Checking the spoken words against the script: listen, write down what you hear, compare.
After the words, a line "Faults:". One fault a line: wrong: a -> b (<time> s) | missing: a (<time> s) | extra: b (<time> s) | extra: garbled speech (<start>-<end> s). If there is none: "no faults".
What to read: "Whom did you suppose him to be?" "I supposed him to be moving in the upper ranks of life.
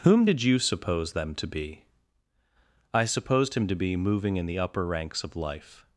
"Whom did you suppose them to be?" "I supposed him to be moving in the upper ranks of life.
Faults:
wrong: him -> them (1.1 s)